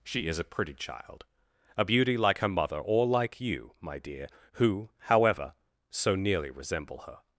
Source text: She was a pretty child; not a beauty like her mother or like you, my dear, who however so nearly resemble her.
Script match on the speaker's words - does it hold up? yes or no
no